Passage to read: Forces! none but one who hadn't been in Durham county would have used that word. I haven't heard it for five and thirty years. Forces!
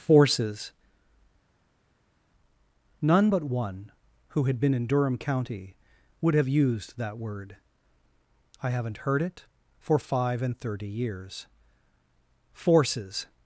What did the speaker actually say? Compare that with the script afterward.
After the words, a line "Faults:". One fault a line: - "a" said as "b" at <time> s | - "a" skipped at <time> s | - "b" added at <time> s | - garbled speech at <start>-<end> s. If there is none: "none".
Forces! none but one who had been in Durham county would have used that word. I haven't heard it for five and thirty years. Forces!
Faults:
- "hadn't" said as "had" at 4.4 s